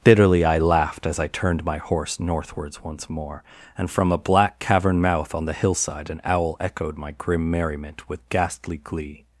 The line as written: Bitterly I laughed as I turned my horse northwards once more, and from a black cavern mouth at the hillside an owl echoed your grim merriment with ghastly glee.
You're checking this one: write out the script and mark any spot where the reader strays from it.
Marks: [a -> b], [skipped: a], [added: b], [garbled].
Bitterly I laughed as I turned my horse northwards once more, and from a black cavern mouth [at -> on] the hillside an owl echoed [your -> my] grim merriment with ghastly glee.